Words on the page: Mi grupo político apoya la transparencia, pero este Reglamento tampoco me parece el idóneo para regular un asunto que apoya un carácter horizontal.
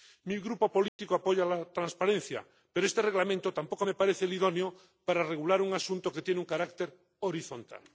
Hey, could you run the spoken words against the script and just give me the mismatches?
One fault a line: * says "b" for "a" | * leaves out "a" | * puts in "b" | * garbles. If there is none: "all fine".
* says "tiene" for "apoya"